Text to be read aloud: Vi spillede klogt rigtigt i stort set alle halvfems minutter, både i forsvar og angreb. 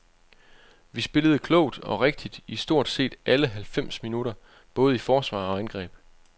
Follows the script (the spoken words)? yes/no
no